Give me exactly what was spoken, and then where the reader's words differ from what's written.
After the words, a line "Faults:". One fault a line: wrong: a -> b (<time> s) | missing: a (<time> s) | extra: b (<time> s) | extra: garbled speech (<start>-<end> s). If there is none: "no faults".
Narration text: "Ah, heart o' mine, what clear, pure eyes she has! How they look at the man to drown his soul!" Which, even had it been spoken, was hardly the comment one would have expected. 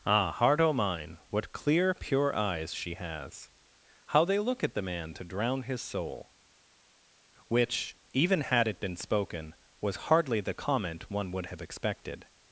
"Ah, heart o' mine, what clear, pure eyes she has! How they look at the man to drown his soul!" Which, even had it been spoken, was hardly the comment one would have expected.
Faults:
no faults